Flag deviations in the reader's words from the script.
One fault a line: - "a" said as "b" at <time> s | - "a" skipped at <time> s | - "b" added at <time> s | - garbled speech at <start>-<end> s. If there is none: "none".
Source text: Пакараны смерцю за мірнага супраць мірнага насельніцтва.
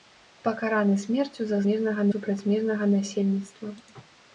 none